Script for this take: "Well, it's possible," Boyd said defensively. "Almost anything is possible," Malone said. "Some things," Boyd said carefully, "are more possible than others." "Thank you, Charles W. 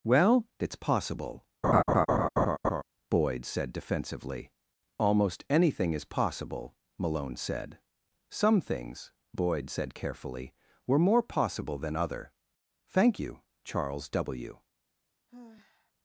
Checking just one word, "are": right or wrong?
wrong